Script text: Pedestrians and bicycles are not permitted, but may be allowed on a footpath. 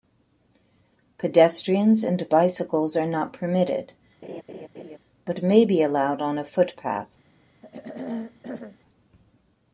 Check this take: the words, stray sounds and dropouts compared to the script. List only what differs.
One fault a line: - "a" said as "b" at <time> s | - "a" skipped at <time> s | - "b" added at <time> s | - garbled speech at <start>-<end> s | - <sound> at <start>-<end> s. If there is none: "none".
- laugh at 4.2-5.0 s
- throat clearing at 7.6-8.8 s